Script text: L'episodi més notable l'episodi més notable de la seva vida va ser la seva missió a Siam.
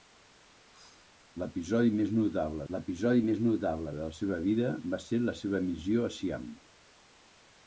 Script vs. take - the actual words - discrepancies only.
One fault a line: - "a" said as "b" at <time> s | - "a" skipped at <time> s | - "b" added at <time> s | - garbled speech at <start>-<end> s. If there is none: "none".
none